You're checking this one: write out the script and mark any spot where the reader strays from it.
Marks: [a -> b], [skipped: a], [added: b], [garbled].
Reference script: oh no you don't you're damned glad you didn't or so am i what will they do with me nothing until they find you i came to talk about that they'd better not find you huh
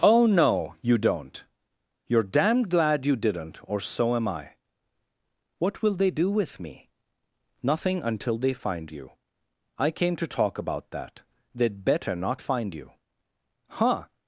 oh no you don't you're damned glad you didn't or so am i what will they do with me nothing until they find you i came to talk about that they'd better not find you huh